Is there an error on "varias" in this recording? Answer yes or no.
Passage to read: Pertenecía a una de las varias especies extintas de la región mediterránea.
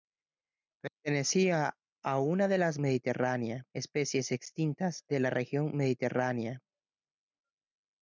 yes